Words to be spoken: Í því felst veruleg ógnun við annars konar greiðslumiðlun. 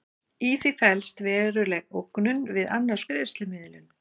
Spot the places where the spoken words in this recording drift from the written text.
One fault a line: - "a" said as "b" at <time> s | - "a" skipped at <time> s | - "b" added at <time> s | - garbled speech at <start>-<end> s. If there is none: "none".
- "konar" skipped at 3.1 s